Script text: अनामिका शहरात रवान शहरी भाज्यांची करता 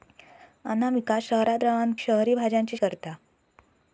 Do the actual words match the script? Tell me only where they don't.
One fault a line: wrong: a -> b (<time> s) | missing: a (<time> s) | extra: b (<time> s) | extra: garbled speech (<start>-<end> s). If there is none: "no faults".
no faults